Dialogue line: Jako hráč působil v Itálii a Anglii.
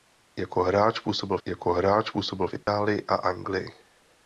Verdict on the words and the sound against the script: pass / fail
fail